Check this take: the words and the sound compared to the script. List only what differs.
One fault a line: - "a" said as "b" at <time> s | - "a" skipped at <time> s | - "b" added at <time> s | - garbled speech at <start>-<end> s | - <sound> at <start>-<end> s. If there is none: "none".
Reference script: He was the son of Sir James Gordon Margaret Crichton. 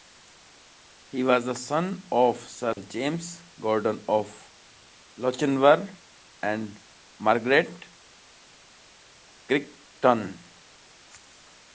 - dropout at 2.7-2.8 s
- "of Lochinvar and" added at 4.1 s